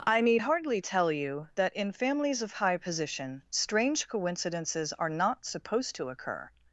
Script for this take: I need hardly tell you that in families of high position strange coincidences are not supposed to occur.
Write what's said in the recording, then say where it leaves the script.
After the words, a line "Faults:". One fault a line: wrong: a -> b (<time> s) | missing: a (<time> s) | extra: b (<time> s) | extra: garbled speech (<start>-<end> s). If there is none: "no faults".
I need hardly tell you that in families of high position strange coincidences are not supposed to occur.
Faults:
no faults